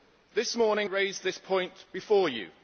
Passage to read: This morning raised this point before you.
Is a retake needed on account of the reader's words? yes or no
no